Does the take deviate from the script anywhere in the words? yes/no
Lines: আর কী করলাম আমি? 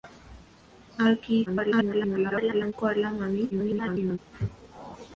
yes